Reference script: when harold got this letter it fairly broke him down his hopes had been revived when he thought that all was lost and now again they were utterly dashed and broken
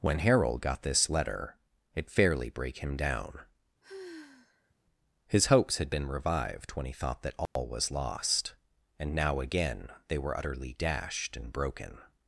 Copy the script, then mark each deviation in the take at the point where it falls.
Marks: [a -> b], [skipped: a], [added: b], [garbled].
when harold got this letter it fairly [broke -> brake] him down his hopes had been revived when he thought that all was lost and now again they were utterly dashed and broken